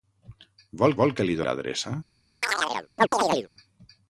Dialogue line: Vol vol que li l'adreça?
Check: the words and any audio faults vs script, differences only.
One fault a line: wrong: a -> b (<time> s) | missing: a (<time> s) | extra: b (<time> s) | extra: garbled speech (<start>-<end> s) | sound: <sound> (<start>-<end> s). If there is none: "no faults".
sound: chirp (2.4-3.5 s)